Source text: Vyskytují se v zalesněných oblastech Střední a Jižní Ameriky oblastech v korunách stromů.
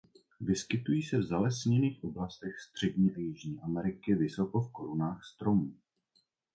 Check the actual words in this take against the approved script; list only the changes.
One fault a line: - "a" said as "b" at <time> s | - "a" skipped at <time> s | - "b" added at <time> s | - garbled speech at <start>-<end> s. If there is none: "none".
- "oblastech" said as "vysoko" at 4.1 s